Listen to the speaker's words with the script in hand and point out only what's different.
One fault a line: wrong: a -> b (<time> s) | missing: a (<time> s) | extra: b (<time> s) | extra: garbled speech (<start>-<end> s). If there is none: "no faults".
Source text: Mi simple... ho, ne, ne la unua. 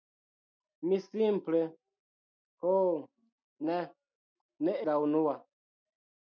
no faults